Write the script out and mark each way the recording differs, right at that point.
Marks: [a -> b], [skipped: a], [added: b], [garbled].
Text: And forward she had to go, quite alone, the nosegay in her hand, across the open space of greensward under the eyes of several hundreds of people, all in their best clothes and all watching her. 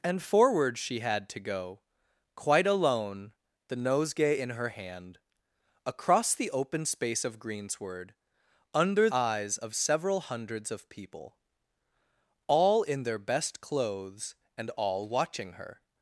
And forward she had to go, quite alone, the nosegay in her hand, across the open space of greensward under [skipped: the] eyes of several hundreds of people, all in their best clothes and all watching her.